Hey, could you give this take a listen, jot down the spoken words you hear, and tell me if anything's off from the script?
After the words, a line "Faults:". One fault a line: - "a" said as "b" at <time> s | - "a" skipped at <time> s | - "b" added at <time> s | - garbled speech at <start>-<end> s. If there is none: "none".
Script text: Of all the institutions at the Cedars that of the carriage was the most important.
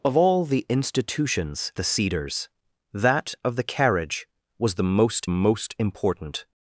Of all the institutions the Cedars that of the carriage was the most most important.
Faults:
- "at" skipped at 1.7 s
- "most" added at 5.3 s